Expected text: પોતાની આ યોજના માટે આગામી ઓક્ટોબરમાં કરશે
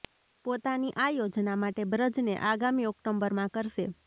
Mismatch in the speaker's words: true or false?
true